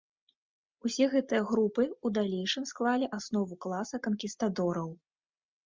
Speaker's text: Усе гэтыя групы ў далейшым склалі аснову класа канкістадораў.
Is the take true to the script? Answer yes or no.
yes